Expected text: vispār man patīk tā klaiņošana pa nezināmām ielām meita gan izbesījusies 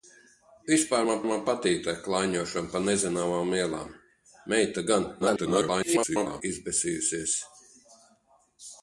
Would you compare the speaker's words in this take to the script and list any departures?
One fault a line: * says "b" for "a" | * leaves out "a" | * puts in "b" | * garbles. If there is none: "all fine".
* puts in "man"
* garbles